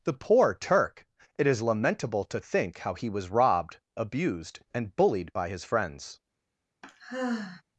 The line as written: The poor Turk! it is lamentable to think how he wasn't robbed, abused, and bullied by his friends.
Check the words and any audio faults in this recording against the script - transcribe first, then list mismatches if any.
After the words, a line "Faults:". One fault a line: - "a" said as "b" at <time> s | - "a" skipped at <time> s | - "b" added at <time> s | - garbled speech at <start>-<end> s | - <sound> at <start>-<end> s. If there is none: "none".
The poor Turk! it is lamentable to think how he was robbed, abused, and bullied by his friends.
Faults:
- "wasn't" said as "was" at 3.1 s
- sigh at 6.8-7.6 s